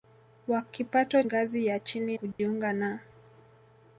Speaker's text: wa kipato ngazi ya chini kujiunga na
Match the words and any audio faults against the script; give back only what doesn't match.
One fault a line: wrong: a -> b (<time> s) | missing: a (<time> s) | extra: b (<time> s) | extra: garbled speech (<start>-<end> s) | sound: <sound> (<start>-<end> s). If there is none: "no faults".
sound: dropout (2.3-2.4 s)